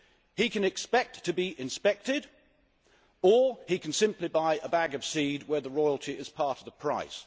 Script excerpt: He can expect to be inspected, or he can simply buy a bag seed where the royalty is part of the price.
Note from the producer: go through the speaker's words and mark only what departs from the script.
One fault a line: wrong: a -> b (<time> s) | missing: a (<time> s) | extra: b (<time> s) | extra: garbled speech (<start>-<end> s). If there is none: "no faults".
extra: of (4.9 s)